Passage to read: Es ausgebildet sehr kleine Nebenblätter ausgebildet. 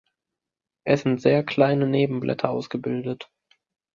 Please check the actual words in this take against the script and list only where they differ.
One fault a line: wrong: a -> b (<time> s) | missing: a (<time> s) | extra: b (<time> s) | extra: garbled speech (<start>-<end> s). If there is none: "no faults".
wrong: ausgebildet -> sind (1.0 s)